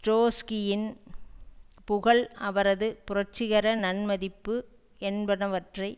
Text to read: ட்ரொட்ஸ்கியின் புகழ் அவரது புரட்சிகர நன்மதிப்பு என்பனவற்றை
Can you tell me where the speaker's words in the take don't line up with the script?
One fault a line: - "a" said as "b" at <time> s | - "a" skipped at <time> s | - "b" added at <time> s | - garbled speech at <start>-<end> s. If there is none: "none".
none